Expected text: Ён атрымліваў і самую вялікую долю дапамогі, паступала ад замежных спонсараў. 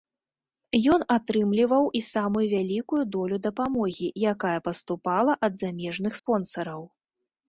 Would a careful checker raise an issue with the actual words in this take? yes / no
yes